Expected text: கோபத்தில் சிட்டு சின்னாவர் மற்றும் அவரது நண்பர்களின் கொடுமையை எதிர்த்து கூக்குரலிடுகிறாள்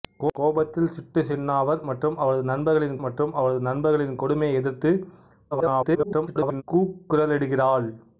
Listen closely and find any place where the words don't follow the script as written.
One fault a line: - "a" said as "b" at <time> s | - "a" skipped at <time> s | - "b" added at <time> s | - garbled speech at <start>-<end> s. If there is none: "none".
- "மற்றும் அவரது நண்பர்களின்" added at 3.0 s
- garbled speech at 5.5-6.6 s